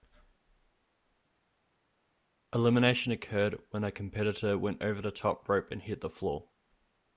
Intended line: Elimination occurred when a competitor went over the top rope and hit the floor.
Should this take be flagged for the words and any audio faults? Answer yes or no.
no